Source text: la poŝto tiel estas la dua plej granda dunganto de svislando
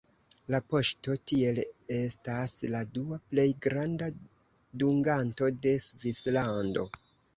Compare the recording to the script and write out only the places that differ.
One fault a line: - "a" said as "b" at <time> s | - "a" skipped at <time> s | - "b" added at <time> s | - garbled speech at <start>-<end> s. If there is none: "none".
none